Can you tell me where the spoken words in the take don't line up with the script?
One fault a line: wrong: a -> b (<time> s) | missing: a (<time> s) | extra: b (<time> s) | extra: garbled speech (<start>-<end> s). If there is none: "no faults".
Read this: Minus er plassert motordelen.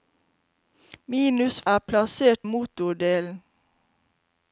no faults